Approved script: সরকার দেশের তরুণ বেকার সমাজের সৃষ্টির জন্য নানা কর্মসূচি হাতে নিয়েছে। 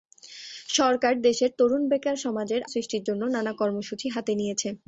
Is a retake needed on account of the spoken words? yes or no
no